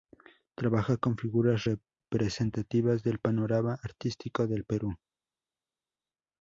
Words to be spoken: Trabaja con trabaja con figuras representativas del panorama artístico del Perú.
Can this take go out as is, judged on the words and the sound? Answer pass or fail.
fail